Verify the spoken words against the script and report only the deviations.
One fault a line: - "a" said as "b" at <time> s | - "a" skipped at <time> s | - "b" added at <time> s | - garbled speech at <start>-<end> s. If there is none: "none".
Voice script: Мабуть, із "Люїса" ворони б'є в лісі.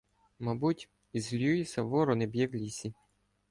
none